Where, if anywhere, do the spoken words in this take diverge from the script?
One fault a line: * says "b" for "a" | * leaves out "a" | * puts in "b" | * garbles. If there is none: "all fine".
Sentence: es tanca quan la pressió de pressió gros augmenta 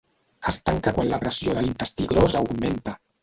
* says "l'intestí" for "pressió"